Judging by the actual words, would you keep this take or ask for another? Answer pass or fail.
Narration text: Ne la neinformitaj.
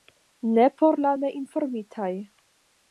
fail